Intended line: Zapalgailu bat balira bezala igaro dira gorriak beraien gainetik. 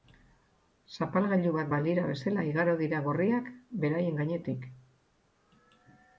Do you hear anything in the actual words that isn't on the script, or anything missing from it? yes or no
no